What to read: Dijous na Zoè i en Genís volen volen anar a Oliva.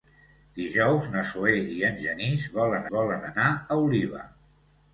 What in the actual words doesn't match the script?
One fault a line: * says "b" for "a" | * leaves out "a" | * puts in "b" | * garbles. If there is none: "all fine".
all fine